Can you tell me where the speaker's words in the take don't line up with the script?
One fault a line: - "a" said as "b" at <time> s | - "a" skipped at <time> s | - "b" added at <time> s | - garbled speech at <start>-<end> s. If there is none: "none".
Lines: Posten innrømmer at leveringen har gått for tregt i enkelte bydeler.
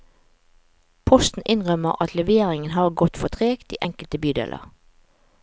none